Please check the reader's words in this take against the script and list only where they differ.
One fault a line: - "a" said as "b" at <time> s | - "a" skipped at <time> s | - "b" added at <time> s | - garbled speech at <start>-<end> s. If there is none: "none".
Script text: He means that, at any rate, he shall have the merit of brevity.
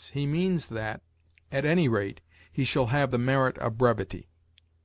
none